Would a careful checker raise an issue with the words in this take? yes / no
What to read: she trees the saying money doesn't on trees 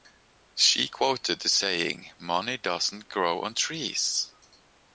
yes